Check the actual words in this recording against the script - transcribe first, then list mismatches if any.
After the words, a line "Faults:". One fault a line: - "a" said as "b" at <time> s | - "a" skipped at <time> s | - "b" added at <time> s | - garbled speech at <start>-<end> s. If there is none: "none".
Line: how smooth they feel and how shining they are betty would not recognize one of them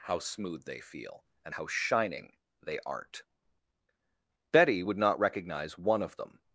how smooth they feel and how shining they aren't betty would not recognize one of them
Faults:
- "are" said as "aren't" at 2.9 s